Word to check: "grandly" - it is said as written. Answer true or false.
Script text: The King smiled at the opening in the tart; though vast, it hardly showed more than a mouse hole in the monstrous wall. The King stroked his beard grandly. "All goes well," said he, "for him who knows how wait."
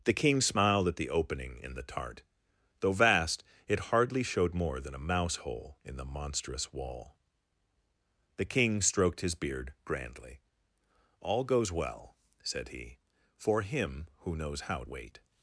true